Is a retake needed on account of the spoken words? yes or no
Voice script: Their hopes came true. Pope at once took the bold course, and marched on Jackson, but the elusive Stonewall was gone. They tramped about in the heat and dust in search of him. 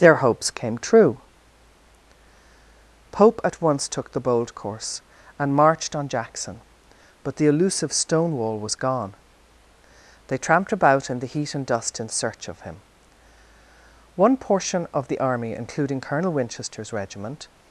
yes